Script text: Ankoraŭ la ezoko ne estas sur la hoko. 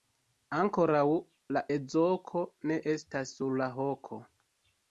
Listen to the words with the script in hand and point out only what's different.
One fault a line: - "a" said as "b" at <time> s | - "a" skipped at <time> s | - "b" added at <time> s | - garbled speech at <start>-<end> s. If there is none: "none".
none